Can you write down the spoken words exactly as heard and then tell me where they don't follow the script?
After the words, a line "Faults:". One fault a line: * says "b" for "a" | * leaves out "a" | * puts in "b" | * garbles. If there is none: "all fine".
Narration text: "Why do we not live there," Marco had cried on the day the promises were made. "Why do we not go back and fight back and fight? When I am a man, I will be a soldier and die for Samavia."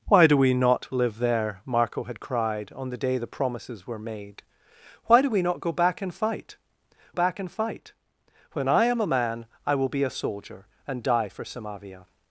"Why do we not live there," Marco had cried on the day the promises were made. "Why do we not go back and fight back and fight? When I am a man, I will be a soldier and die for Samavia."
Faults:
all fine